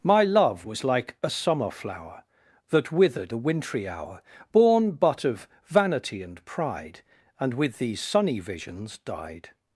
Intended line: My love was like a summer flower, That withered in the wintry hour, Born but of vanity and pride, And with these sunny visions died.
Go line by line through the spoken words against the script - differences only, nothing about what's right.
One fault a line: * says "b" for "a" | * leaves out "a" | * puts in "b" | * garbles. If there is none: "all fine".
* leaves out "in"